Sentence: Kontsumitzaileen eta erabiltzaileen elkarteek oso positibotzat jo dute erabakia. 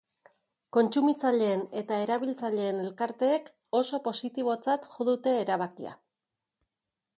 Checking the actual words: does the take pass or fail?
pass